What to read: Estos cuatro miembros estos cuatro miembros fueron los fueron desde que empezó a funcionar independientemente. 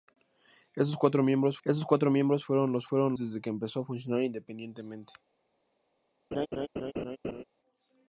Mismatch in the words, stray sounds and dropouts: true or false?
true